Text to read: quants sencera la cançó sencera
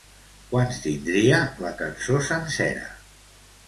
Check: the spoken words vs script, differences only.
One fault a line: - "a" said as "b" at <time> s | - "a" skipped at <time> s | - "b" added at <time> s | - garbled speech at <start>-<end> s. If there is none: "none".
- "sencera" said as "tindria" at 0.8 s